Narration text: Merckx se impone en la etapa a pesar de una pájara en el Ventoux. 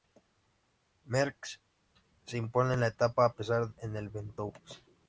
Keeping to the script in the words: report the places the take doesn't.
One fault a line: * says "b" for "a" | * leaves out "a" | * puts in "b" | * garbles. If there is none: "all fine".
* leaves out "de una pájara"